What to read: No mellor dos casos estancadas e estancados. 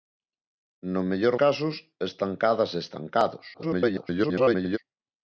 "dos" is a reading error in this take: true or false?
true